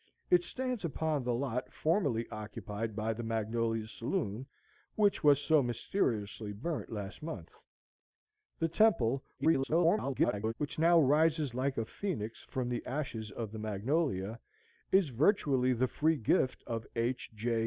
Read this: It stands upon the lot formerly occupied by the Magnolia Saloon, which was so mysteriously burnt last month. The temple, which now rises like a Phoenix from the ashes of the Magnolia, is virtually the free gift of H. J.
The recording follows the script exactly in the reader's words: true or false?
false